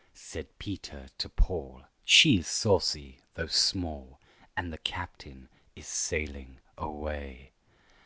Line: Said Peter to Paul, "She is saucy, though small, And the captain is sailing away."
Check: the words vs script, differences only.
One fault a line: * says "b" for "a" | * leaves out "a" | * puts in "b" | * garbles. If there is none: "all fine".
all fine